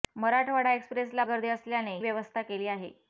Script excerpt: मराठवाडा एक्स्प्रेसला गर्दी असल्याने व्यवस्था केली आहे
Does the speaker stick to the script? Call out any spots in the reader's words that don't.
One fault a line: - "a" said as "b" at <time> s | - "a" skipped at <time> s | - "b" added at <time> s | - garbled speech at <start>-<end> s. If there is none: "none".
none